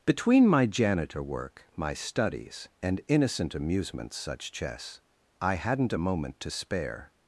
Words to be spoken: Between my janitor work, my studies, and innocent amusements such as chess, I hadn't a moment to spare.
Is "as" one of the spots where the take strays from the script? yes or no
yes